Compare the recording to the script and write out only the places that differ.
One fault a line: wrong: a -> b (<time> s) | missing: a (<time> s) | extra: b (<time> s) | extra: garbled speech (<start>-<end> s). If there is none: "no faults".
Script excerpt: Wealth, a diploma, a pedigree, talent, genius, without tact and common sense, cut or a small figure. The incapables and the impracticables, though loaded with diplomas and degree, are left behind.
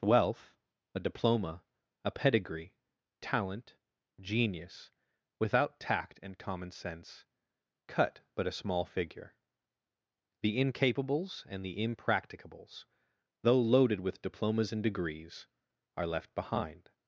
wrong: or -> but (8.3 s)
wrong: degree -> degrees (14.8 s)